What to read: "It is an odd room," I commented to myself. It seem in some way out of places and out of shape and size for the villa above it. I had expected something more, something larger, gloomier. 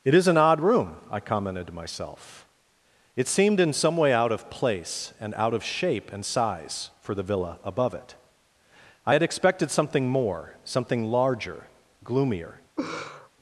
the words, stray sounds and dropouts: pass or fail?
fail